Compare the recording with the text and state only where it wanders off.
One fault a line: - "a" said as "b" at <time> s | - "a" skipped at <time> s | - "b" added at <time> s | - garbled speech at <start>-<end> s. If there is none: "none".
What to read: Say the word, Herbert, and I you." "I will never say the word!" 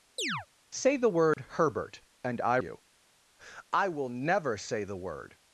none